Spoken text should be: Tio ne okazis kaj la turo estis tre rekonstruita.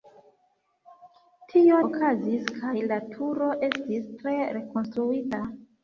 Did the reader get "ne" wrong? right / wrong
wrong